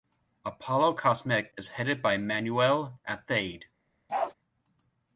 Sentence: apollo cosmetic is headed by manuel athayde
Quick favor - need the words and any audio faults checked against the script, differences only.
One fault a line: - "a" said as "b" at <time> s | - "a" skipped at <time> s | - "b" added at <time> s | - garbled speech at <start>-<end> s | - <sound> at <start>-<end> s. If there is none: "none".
- bark at 4.1-4.3 s